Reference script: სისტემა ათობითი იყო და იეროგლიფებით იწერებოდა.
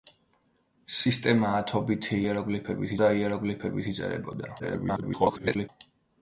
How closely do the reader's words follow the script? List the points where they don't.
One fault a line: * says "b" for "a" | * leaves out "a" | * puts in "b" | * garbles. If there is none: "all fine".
* says "იეროგლიფებით" for "იყო"
* garbles